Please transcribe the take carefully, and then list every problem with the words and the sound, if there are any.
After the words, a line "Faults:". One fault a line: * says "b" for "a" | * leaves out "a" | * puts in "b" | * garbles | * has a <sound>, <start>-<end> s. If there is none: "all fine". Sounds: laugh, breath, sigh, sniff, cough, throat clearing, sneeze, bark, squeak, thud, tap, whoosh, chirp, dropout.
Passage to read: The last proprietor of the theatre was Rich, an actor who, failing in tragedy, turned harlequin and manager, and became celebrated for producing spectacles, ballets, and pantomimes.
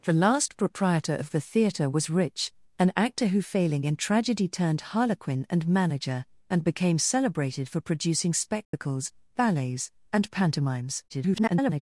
The last proprietor of the theatre was Rich, an actor who, failing in tragedy, turned harlequin and manager, and became celebrated for producing spectacles, ballets, and pantomimes. [garbled]
Faults:
* has a dropout, 8.6-8.7 s
* garbles